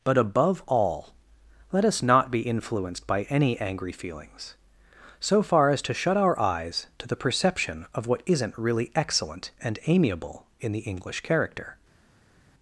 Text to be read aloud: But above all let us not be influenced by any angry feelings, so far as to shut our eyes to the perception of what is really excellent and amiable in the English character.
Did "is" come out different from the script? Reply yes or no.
yes